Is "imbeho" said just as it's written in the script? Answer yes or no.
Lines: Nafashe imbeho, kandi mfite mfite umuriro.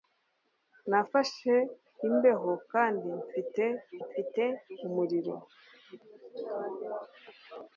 yes